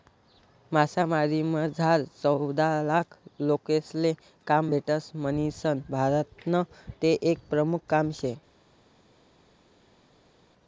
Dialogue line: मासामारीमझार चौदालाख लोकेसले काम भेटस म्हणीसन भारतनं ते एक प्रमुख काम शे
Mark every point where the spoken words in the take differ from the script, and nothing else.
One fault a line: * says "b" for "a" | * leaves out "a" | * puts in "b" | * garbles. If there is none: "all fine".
all fine